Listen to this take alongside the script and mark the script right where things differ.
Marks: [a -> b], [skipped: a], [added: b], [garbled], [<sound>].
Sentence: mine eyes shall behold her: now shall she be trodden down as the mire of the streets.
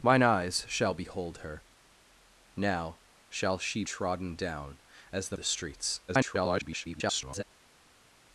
mine eyes shall behold her: now shall she [skipped: be] trodden down as the [skipped: mire of] the streets. [garbled]